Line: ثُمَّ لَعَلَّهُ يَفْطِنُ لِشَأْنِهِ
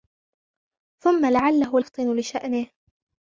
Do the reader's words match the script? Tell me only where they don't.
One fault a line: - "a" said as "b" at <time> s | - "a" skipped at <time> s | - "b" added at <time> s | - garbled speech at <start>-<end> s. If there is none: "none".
none